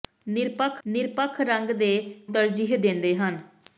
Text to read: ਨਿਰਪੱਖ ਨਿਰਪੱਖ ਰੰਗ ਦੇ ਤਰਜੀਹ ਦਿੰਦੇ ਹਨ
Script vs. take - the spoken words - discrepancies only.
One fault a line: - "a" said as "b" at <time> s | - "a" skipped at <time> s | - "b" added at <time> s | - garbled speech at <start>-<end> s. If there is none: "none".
none